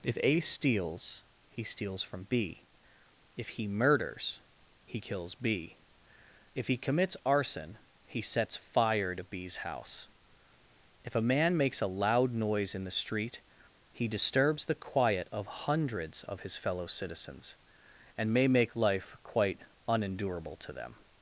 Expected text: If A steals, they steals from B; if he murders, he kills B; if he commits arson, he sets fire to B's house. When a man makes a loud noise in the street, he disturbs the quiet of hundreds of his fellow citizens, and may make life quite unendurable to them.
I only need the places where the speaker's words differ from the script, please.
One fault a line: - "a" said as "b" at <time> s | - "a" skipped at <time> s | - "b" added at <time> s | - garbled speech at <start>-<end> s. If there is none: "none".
- "they" said as "he" at 1.5 s
- "When" said as "If" at 11.0 s